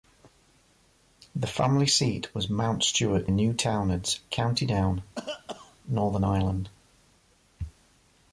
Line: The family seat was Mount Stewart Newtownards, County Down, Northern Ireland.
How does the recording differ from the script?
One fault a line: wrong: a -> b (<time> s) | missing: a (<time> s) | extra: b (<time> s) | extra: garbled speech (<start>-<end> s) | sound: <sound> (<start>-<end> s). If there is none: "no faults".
sound: cough (5.2-5.8 s)